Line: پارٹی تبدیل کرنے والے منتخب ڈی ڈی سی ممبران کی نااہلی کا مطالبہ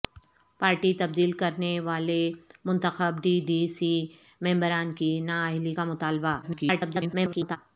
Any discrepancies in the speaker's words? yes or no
yes